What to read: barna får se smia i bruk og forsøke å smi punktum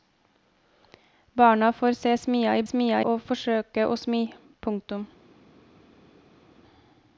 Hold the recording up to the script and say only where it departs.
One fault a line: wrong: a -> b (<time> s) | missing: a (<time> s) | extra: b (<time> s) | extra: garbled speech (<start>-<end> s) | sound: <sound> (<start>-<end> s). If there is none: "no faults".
wrong: bruk -> smia (2.6 s)